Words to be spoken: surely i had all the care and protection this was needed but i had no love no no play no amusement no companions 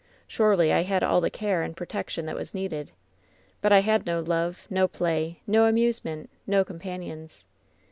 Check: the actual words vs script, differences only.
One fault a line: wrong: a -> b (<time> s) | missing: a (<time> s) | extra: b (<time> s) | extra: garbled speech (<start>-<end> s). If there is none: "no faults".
wrong: this -> that (2.2 s)
missing: no (4.9 s)